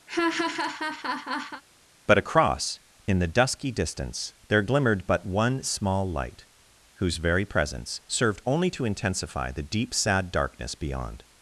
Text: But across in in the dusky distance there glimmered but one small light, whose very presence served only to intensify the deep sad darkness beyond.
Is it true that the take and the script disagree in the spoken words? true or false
true